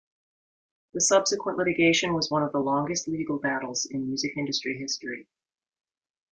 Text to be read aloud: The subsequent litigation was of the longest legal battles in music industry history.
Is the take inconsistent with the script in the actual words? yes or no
yes